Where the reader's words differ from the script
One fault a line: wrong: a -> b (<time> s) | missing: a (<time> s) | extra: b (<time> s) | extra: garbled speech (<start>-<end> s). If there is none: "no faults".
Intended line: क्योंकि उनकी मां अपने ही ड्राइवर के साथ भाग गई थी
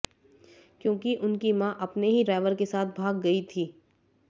no faults